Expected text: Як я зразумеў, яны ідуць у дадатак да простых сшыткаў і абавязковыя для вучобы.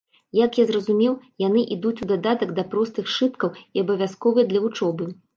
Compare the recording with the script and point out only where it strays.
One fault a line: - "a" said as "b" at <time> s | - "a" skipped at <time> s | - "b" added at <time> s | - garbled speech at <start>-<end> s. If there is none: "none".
none